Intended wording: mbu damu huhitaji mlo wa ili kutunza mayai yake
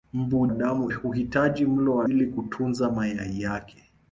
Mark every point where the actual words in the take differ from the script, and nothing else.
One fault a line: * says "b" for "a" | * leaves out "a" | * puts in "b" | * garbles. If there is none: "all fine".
all fine